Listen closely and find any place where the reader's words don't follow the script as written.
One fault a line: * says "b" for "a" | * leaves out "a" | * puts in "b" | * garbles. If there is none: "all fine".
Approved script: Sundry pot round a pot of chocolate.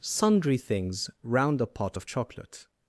* says "things" for "pot"